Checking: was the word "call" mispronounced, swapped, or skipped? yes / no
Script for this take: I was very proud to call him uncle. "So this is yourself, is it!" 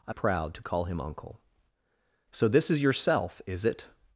no